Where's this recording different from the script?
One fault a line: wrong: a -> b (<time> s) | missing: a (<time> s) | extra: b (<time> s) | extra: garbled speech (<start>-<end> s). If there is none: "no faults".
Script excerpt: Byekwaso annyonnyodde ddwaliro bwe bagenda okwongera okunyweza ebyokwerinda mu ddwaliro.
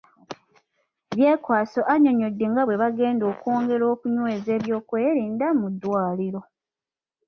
wrong: ddwaliro -> nga (2.5 s)